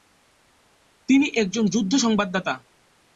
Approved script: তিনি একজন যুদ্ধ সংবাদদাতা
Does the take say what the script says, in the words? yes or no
yes